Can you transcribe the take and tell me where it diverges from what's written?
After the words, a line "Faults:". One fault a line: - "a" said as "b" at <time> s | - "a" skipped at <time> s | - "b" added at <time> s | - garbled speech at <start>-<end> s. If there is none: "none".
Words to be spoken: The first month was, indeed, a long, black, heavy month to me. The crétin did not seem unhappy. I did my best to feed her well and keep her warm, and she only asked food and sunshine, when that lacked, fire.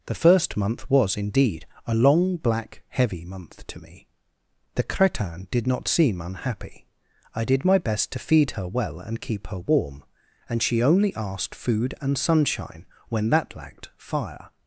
The first month was, indeed, a long, black, heavy month to me. The crétin did not seem unhappy. I did my best to feed her well and keep her warm, and she only asked food and sunshine, when that lacked, fire.
Faults:
none